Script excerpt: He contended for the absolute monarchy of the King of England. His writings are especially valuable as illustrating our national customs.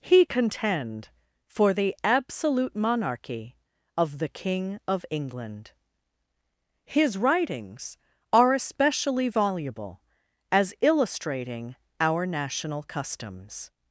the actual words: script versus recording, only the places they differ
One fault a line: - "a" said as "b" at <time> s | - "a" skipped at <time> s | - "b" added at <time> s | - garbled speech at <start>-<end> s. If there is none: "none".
- "contended" said as "contend" at 0.2 s